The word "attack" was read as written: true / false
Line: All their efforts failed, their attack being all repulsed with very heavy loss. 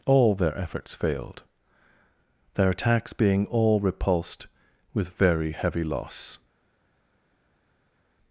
false